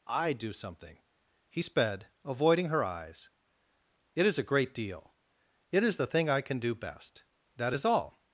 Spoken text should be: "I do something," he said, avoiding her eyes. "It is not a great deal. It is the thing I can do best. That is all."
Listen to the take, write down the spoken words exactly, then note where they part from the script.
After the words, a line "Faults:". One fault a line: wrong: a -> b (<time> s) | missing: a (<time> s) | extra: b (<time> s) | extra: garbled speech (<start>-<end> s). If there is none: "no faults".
"I do something," he sped, avoiding her eyes. "It is a great deal. It is the thing I can do best. That is all."
Faults:
wrong: said -> sped (1.6 s)
missing: not (4.4 s)